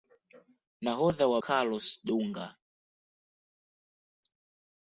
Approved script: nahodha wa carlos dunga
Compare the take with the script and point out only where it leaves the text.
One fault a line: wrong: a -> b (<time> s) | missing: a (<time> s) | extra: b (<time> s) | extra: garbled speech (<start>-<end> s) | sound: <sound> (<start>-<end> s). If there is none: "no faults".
no faults